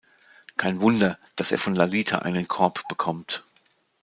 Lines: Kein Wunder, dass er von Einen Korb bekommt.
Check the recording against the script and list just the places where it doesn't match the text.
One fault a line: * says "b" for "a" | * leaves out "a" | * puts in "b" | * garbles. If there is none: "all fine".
* puts in "Lalita"